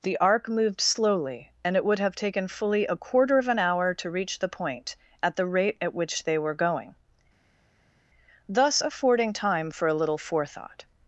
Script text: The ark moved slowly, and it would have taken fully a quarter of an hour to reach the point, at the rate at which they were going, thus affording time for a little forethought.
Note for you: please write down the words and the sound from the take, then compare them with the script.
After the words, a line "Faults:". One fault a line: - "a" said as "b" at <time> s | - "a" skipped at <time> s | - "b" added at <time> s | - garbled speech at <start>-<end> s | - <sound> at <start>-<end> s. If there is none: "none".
The ark moved slowly, and it would have taken fully a quarter of an hour to reach the point, at the rate at which they were going, thus affording time for a little forethought.
Faults:
none